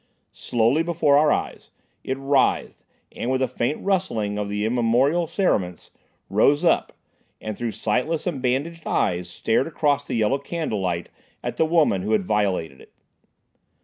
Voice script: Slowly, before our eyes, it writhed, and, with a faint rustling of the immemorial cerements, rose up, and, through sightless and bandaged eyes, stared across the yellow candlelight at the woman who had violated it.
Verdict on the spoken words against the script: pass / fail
pass